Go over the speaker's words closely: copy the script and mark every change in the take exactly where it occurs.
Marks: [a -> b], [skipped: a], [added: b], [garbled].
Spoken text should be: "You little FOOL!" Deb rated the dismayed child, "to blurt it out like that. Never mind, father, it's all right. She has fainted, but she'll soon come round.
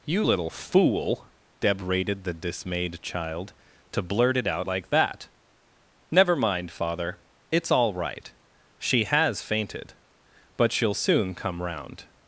"You little FOOL!" Deb rated the dismayed child, "to blurt it out like that. Never mind, father, it's all right. She has fainted, but she'll soon come round.